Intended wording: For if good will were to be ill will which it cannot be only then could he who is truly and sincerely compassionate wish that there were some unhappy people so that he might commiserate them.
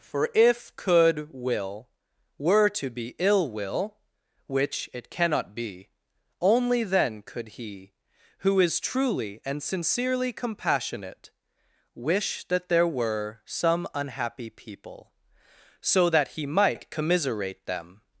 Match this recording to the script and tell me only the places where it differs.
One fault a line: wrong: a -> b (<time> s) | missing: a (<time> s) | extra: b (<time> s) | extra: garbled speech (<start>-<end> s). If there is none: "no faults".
wrong: good -> could (0.8 s)